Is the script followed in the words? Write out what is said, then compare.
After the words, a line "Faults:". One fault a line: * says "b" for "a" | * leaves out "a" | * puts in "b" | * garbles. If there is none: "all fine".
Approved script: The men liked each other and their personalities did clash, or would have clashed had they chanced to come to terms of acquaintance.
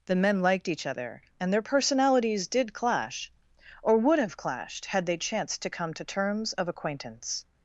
The men liked each other and their personalities did clash, or would have clashed had they chanced to come to terms of acquaintance.
Faults:
all fine